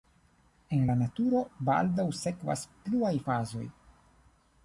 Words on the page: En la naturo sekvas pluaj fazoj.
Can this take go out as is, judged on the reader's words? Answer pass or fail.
fail